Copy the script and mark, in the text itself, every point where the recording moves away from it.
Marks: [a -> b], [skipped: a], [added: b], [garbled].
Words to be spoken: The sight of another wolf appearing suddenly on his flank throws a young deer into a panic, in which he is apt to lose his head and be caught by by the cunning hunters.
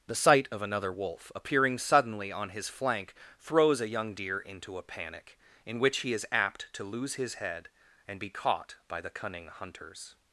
The sight of another wolf appearing suddenly on his flank throws a young deer into a panic, in which he is apt to lose his head and be caught by [skipped: by] the cunning hunters.